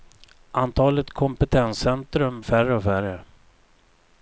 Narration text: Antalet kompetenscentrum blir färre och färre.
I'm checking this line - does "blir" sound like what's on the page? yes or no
no